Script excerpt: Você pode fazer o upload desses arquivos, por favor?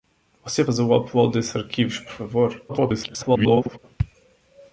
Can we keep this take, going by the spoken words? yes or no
no